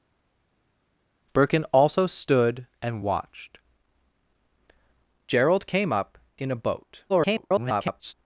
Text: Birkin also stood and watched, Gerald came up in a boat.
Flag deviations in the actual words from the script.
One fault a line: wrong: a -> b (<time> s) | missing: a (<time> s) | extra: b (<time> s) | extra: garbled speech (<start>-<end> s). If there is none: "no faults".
extra: garbled speech (7.1-8.1 s)